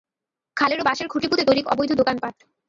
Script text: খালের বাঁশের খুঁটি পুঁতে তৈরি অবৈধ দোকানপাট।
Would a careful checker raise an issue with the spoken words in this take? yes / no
no